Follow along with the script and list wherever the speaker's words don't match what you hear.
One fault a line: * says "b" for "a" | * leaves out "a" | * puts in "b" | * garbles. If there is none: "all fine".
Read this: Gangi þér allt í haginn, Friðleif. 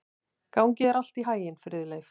all fine